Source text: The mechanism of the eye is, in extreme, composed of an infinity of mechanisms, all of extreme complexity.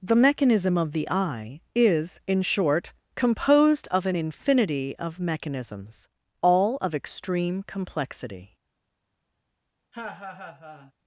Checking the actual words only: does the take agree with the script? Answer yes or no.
no